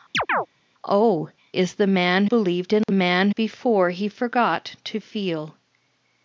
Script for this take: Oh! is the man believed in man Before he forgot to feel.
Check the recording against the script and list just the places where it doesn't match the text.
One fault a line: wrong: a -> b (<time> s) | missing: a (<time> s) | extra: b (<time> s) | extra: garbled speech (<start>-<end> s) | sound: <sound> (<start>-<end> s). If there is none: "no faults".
sound: chirp (0.1-0.5 s)
sound: dropout (2.8-2.9 s)